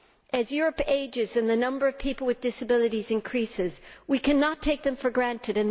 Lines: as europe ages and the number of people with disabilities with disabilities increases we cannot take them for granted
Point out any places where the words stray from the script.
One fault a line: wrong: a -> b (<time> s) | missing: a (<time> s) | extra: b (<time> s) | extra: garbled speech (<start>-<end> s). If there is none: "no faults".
missing: with disabilities (3.1 s)